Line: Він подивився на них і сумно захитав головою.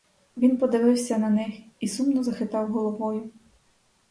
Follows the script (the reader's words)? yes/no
yes